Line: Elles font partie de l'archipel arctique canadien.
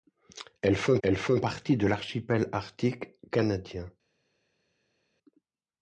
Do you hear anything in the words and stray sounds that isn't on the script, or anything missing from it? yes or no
yes